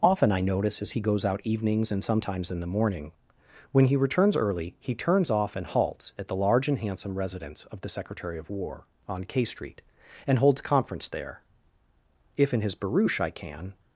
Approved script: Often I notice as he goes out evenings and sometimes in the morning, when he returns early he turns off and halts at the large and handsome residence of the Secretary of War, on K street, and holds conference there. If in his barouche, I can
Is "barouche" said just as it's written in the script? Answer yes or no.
yes